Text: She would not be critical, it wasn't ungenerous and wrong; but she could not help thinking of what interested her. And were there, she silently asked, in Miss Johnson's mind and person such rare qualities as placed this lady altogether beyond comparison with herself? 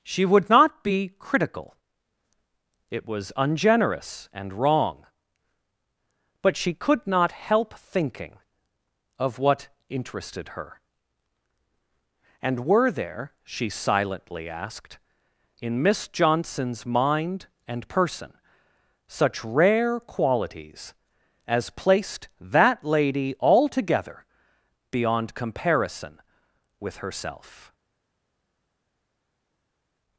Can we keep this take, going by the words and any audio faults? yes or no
no